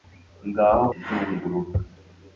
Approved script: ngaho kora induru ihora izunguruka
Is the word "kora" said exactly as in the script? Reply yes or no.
no